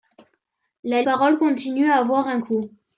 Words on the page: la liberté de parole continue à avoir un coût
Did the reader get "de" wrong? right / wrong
wrong